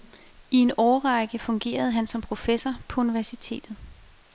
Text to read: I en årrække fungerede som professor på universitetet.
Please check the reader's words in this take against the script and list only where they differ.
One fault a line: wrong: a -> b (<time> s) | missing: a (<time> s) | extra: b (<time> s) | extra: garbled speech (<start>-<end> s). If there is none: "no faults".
extra: han (1.9 s)